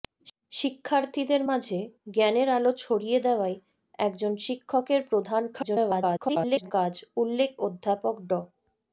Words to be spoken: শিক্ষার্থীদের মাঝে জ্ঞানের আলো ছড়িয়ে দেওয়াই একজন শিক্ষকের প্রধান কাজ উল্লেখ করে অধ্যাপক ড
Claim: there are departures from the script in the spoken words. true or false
true